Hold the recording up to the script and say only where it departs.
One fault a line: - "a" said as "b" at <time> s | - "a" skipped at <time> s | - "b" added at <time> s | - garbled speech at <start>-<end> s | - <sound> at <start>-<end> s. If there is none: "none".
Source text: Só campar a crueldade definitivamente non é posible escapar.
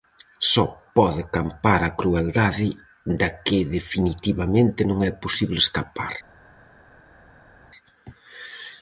- "pode" added at 1.0 s
- "da que" added at 3.2 s